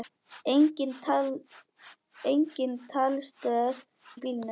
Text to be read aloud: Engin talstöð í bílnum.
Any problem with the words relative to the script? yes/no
no